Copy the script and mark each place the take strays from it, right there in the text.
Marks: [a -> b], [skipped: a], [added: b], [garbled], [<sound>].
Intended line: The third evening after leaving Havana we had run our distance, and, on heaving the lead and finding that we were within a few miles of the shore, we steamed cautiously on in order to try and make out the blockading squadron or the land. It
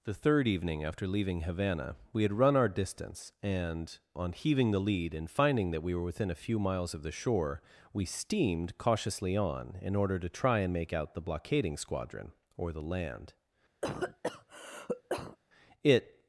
The third evening after leaving Havana we had run our distance, and, on heaving the lead and finding that we were within a few miles of the shore, we steamed cautiously on in order to try and make out the blockading squadron or the land. [cough] It